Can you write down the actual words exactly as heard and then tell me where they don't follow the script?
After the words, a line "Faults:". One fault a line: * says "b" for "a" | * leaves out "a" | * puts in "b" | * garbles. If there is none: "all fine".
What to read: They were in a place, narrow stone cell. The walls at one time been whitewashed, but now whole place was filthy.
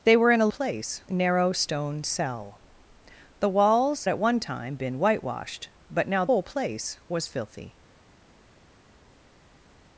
They were in a place, narrow stone cell. The walls at one time been whitewashed, but now whole place was filthy.
Faults:
all fine